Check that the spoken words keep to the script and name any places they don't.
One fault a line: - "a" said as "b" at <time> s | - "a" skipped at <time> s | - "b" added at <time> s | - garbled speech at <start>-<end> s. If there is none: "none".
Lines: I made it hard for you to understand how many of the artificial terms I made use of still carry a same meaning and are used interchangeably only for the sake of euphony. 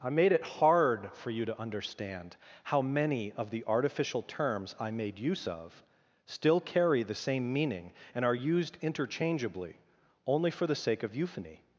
- "a" said as "the" at 7.0 s